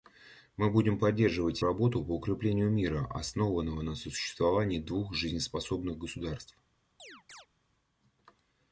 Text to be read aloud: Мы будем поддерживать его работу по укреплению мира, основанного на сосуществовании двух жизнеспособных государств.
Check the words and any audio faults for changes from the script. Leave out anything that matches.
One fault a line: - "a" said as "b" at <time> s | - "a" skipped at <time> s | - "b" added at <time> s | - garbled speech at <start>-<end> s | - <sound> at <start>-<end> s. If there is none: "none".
- "его" skipped at 1.6 s
- chirp at 7.0-7.5 s